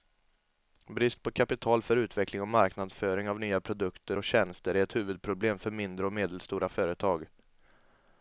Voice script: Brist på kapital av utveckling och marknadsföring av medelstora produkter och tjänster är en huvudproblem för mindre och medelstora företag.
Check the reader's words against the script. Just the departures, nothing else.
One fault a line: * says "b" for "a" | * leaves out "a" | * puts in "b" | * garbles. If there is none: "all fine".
* says "för" for "av"
* says "nya" for "medelstora"
* says "ett" for "en"